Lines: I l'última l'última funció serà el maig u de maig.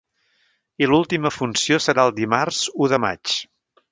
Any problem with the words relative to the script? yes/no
yes